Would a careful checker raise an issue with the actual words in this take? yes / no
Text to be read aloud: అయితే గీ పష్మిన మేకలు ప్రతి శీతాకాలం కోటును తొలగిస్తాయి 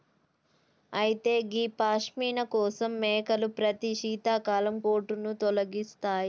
yes